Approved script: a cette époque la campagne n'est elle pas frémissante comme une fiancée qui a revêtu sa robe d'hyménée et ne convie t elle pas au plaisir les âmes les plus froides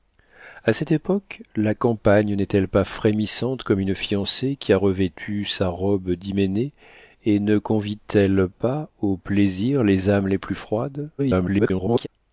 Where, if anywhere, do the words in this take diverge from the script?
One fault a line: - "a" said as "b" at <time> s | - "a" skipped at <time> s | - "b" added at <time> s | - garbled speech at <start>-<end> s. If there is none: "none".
- garbled speech at 11.2-12.1 s